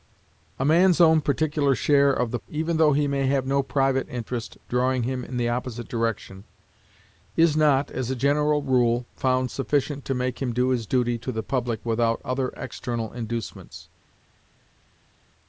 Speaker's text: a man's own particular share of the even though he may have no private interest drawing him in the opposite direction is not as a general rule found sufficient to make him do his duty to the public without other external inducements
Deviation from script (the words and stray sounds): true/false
false